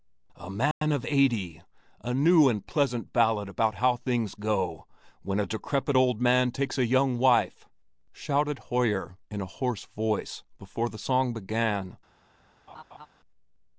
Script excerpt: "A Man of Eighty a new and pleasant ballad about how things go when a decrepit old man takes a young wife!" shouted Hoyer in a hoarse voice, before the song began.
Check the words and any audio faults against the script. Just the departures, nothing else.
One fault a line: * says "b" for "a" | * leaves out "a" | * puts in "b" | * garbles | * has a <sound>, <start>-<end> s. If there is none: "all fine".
* has a dropout, 0.7-0.8 s
* has a laugh, 12.7-13.1 s